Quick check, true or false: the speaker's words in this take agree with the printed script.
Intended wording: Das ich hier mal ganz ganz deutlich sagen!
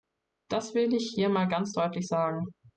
false